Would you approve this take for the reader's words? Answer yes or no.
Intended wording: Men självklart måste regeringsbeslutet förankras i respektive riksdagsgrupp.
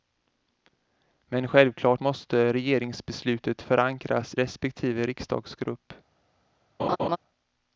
no